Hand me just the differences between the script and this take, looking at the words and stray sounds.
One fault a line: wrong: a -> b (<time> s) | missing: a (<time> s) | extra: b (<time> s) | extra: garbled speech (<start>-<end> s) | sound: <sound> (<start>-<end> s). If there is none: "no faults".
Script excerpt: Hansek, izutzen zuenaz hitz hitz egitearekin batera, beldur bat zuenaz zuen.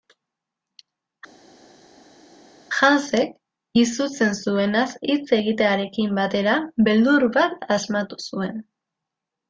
missing: hitz (5.3 s)
wrong: zuenaz -> asmatu (7.8 s)